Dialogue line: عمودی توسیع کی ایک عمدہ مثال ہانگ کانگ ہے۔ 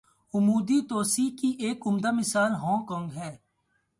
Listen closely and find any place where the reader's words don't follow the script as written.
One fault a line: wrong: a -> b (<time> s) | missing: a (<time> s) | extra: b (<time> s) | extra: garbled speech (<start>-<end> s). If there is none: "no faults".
no faults